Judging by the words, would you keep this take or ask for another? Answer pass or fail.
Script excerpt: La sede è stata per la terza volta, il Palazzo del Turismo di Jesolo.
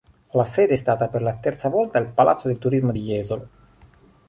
pass